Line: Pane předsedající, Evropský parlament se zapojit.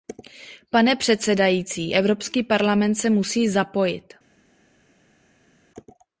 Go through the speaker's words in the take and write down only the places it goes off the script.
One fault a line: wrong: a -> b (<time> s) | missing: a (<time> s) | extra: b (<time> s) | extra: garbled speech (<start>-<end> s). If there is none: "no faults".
extra: musí (3.1 s)